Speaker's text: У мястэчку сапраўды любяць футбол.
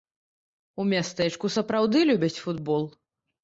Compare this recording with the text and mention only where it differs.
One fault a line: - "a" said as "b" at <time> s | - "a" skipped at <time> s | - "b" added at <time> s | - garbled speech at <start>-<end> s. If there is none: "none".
none